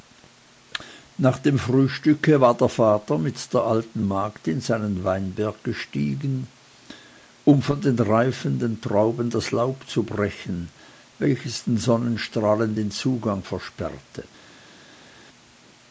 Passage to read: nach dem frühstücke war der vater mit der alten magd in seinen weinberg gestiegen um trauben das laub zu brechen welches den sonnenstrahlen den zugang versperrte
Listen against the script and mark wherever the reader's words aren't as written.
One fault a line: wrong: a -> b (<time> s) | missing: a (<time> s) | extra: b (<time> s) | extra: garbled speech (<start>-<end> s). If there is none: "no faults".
extra: von den reifenden (7.6 s)